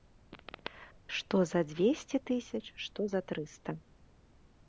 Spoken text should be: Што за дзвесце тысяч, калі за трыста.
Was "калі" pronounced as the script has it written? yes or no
no